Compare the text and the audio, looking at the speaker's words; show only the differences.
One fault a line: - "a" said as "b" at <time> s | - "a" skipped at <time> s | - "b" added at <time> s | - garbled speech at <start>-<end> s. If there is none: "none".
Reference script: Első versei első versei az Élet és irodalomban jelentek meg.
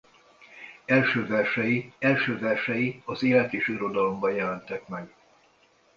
none